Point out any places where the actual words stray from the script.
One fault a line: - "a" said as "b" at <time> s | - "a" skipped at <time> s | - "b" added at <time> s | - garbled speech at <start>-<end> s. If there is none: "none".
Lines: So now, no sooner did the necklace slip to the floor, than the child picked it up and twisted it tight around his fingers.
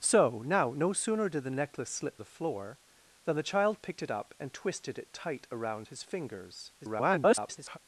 - "to" skipped at 2.2 s
- garbled speech at 6.8-7.8 s